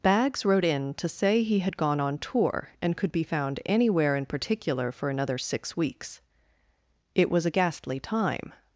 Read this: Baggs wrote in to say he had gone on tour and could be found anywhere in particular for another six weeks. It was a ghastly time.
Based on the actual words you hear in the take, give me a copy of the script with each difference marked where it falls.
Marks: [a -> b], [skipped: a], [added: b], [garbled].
Baggs wrote in to say he had gone on tour and could be found anywhere in particular for another six weeks. It was a ghastly time.